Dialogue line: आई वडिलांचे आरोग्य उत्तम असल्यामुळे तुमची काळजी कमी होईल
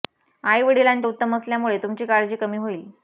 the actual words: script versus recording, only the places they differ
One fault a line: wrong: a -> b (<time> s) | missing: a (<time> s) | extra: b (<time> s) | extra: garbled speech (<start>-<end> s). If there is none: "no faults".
missing: आरोग्य (1.1 s)